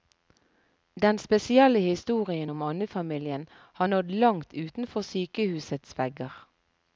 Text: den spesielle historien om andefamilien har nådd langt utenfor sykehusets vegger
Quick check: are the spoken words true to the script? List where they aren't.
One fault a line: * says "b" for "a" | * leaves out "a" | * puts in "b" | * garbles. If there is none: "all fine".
all fine